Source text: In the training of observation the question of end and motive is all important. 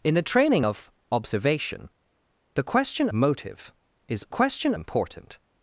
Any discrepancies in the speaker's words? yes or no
yes